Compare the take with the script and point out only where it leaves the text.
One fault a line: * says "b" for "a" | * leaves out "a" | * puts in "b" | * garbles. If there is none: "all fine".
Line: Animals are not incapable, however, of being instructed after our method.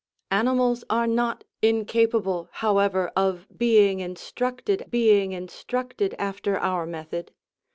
* puts in "being instructed"